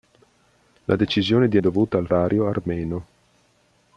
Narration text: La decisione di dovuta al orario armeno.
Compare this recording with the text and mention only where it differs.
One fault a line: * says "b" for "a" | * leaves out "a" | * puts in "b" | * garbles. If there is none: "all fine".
all fine